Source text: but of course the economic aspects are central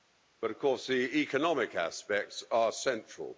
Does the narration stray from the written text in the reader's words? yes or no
no